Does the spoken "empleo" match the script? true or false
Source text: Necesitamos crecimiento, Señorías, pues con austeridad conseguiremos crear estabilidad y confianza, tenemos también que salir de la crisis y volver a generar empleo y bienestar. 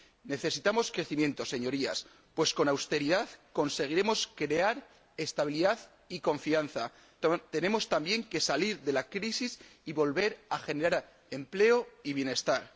true